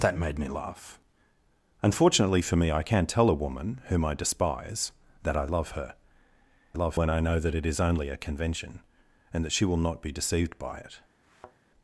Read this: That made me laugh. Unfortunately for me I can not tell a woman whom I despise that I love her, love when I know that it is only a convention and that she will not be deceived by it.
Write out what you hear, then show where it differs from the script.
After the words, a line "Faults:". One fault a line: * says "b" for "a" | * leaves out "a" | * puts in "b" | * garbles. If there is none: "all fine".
That made me laugh. Unfortunately for me I can not tell a woman whom I despise that I love her, love when I know that it is only a convention and that she will not be deceived by it.
Faults:
all fine